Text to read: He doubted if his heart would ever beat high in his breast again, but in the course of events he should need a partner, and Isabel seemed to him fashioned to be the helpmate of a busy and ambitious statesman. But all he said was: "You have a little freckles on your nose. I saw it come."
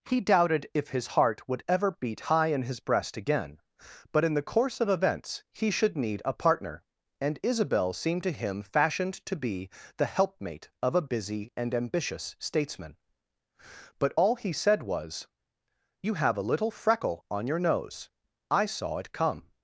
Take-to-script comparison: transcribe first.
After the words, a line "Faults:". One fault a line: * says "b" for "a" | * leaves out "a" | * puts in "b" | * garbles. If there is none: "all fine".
He doubted if his heart would ever beat high in his breast again, but in the course of events he should need a partner, and Isabel seemed to him fashioned to be the helpmate of a busy and ambitious statesman. But all he said was: "You have a little freckle on your nose. I saw it come."
Faults:
* says "freckle" for "freckles"